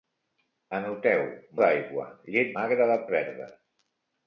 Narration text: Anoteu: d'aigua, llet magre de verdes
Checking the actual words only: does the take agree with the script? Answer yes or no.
yes